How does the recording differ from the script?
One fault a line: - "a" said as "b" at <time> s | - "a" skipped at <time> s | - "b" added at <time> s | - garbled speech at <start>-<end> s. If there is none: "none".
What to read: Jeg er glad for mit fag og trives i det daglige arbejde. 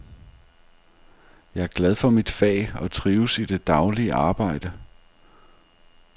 none